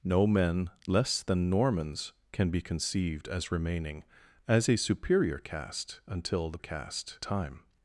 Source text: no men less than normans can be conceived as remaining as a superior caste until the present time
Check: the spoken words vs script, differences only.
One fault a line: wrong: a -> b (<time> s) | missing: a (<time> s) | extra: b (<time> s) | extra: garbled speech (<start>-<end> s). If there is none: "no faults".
wrong: present -> caste (6.6 s)